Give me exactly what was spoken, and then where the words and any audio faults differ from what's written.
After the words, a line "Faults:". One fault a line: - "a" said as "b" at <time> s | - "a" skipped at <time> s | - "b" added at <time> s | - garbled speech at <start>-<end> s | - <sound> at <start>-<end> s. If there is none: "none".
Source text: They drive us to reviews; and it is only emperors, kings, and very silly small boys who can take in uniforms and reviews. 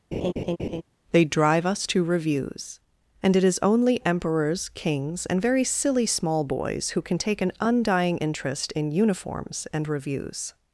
They drive us to reviews; and it is only emperors, kings, and very silly small boys who can take an undying interest in uniforms and reviews.
Faults:
- laugh at 0.1-0.8 s
- "an undying interest" added at 7.4 s